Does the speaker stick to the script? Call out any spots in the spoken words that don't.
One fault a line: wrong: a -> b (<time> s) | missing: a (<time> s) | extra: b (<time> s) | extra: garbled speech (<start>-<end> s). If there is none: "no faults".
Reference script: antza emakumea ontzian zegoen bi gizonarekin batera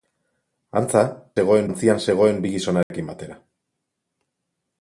wrong: emakumea -> zegoen (1.4 s)